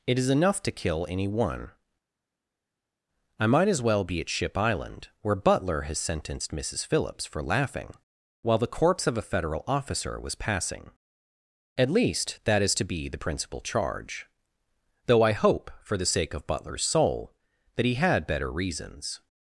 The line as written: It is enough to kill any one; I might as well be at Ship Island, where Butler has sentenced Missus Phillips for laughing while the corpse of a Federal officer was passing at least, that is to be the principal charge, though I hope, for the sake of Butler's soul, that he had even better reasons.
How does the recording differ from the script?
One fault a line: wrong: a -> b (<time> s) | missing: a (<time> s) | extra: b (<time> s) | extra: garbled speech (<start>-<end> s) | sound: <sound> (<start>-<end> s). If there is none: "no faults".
missing: even (18.3 s)